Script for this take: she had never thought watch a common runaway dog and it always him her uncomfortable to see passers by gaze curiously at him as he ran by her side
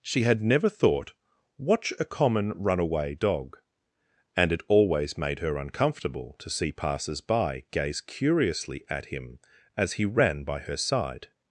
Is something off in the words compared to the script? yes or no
yes